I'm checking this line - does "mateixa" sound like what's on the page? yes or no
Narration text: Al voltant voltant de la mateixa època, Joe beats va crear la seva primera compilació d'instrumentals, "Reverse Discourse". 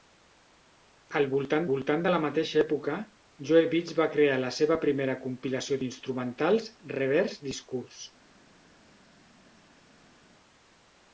yes